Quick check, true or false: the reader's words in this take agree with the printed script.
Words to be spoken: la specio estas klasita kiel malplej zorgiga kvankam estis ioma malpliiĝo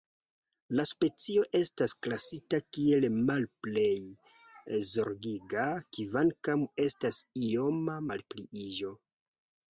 false